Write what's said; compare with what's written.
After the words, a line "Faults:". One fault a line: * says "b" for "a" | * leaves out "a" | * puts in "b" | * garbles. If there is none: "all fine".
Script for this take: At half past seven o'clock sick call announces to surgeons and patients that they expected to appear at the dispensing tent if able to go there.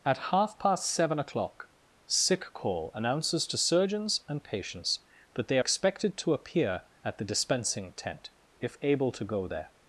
At half past seven o'clock sick call announces to surgeons and patients that they expected to appear at the dispensing tent if able to go there.
Faults:
all fine